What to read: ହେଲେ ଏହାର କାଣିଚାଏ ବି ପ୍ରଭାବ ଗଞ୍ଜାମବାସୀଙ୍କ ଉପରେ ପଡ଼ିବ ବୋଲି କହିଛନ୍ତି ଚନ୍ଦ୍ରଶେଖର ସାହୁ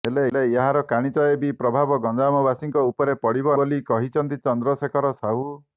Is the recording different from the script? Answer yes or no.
no